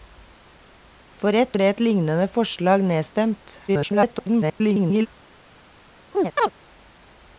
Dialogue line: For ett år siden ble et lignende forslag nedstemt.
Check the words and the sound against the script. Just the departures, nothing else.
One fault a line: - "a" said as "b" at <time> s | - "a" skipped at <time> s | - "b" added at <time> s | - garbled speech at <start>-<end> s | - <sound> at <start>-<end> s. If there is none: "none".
- "år siden" skipped at 1.6 s
- garbled speech at 3.7-5.1 s
- chirp at 6.1-6.5 s